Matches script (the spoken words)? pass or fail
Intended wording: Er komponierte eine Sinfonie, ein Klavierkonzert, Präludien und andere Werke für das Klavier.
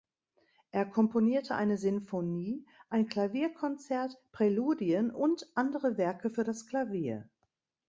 pass